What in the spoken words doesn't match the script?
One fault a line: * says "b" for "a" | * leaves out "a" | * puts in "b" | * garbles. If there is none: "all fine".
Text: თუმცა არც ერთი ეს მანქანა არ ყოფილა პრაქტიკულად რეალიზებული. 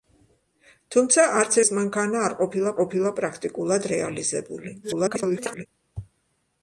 * leaves out "ერთი"
* puts in "ყოფილა"
* garbles